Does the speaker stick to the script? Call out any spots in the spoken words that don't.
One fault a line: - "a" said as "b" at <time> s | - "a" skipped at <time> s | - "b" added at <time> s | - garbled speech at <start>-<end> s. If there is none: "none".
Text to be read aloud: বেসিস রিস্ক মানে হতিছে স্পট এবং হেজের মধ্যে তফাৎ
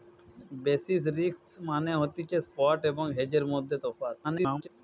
- garbled speech at 4.2-4.7 s